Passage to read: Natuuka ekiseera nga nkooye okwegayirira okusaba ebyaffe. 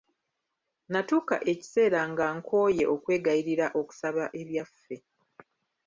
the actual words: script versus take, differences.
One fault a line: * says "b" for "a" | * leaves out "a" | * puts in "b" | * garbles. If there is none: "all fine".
all fine